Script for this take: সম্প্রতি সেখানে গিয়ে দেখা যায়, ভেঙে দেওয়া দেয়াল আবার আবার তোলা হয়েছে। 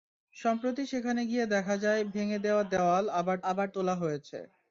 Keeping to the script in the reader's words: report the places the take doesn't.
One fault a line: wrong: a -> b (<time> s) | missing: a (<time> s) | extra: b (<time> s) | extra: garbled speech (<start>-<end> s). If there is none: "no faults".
no faults